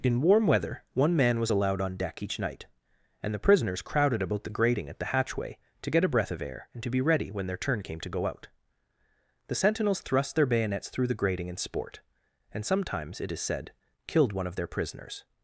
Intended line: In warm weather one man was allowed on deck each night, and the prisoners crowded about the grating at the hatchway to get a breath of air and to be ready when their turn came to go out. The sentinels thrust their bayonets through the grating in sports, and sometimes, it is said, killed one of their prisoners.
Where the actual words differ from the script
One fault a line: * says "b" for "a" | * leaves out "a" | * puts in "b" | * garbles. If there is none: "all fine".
* says "sport" for "sports"